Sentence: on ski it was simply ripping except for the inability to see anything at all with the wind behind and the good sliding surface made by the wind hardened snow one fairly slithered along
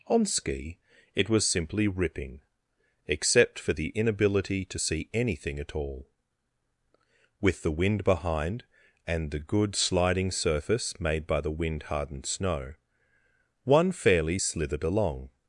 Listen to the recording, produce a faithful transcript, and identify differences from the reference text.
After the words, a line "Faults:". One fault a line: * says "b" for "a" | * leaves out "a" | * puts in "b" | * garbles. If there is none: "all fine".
on ski it was simply ripping except for the inability to see anything at all with the wind behind and the good sliding surface made by the wind hardened snow one fairly slithered along
Faults:
all fine